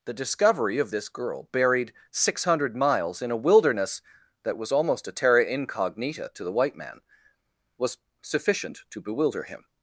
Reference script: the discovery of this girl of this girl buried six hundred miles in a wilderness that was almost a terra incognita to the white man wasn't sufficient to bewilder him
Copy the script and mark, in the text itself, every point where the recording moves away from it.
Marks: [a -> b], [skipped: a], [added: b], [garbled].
the discovery of this girl [skipped: of this girl] buried six hundred miles in a wilderness that was almost a terra incognita to the white man [wasn't -> was] sufficient to bewilder him